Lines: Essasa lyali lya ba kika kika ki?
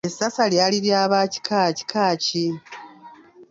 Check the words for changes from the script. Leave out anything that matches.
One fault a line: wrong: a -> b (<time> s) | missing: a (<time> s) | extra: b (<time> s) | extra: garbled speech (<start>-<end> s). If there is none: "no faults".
no faults